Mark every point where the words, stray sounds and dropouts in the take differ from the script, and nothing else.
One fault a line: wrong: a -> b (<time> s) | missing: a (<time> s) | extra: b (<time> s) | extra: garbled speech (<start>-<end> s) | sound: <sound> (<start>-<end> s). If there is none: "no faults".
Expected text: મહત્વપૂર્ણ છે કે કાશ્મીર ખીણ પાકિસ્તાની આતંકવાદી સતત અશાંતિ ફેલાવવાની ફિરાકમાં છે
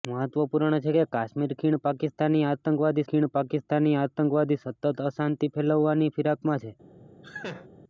extra: ખીણ પાકિસ્તાની આતંકવાદી (3.0 s)
sound: laugh (7.2-7.7 s)